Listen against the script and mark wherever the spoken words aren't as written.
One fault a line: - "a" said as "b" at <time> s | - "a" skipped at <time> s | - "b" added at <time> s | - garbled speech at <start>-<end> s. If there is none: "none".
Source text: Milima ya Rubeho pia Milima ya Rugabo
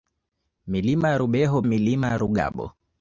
- "pia" skipped at 1.6 s